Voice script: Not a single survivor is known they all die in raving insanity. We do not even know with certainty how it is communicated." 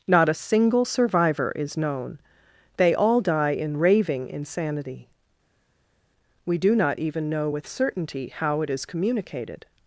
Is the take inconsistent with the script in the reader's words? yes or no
no